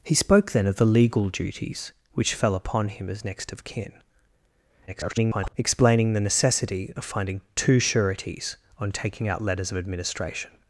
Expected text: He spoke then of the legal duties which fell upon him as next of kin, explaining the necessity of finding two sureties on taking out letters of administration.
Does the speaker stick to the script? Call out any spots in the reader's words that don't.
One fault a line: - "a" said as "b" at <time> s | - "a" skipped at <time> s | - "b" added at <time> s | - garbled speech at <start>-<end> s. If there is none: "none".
- garbled speech at 4.9-5.5 s